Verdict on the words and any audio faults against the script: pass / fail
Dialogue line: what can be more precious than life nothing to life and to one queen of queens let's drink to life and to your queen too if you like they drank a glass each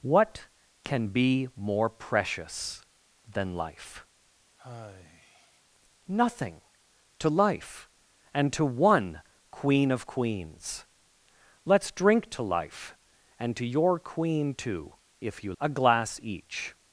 fail